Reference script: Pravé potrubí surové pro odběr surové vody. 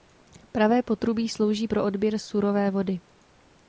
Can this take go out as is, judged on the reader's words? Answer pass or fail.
fail